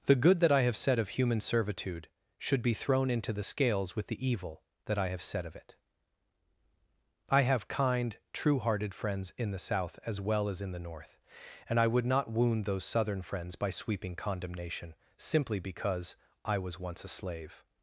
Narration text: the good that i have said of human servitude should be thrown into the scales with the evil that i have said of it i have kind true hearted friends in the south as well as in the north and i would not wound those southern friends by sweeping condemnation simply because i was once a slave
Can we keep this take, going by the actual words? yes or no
yes